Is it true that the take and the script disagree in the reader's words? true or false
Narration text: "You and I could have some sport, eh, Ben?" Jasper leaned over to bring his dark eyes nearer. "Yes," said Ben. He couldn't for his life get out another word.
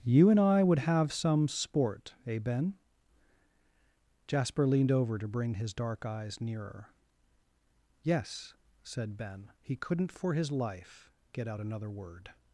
true